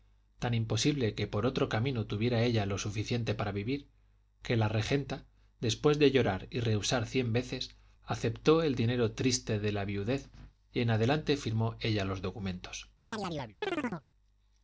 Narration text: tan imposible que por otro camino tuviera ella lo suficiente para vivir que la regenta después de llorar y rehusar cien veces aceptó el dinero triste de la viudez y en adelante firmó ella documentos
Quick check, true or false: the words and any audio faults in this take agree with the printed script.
false